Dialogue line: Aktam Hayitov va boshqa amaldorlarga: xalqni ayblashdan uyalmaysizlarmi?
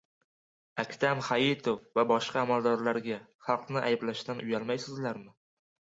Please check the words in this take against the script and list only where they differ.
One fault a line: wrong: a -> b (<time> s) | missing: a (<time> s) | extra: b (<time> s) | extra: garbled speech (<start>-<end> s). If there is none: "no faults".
no faults